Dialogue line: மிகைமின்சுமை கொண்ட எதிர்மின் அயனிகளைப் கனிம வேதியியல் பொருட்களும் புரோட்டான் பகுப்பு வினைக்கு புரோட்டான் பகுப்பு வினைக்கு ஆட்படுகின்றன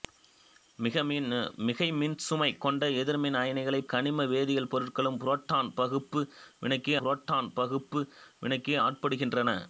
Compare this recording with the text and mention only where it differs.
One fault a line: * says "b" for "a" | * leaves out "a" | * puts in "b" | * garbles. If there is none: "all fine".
all fine